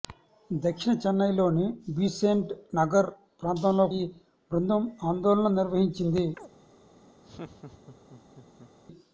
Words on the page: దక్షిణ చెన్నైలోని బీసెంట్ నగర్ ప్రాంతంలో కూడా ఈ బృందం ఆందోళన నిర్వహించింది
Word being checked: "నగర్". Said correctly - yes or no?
yes